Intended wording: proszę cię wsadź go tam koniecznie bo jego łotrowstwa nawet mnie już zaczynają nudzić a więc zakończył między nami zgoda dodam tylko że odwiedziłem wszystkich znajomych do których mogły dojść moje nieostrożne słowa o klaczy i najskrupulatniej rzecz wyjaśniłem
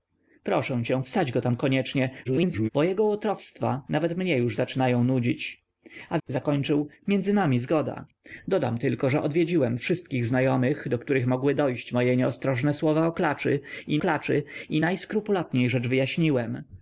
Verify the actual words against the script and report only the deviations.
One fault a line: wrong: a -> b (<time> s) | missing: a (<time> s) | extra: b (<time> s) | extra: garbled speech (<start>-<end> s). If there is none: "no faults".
extra: garbled speech (2.2-2.7 s)
missing: więc (6.2 s)
extra: klaczy i (14.0 s)